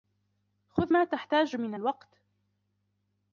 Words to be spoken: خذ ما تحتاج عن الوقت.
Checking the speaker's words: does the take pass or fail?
fail